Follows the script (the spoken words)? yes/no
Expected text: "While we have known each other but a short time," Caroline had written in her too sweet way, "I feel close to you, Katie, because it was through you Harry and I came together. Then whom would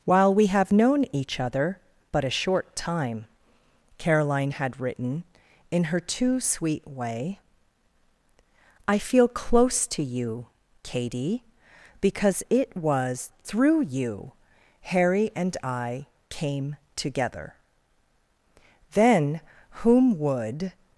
yes